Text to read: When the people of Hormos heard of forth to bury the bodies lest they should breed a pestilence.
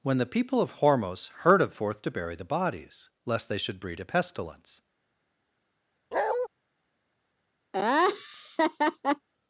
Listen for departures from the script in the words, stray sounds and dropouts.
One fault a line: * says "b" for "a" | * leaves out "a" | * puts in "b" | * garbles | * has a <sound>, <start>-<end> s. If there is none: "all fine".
* has a bark, 6.1-6.5 s
* has a laugh, 7.7-9.3 s